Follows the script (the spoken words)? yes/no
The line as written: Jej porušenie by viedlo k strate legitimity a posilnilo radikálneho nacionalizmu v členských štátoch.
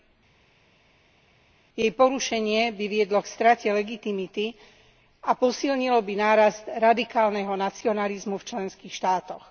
no